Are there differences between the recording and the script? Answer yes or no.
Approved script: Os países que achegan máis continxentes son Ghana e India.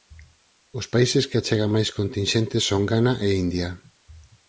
no